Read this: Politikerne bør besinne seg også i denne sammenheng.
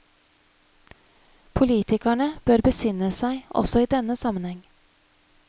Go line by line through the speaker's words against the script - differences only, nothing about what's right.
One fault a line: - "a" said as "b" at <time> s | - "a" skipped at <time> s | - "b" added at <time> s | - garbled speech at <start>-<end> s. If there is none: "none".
none